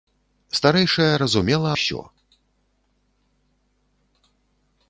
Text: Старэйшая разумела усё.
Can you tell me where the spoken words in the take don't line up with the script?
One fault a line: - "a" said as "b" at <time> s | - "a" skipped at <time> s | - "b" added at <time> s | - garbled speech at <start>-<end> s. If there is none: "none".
none